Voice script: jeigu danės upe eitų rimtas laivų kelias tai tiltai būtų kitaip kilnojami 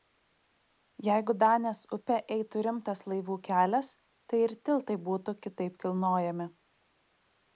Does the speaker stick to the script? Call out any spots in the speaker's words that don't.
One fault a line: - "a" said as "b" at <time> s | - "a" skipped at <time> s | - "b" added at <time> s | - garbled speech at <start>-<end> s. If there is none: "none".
- "ir" added at 4.5 s